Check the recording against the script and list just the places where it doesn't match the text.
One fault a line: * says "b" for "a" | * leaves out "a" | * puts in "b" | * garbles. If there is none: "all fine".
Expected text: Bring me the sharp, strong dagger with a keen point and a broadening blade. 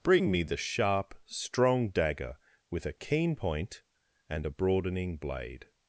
all fine